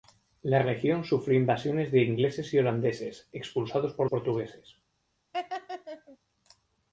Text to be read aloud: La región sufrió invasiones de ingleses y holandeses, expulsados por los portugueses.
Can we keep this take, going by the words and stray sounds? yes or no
no